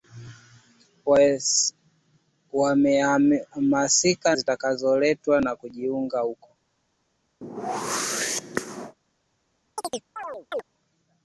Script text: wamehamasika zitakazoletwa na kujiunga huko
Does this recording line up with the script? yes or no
yes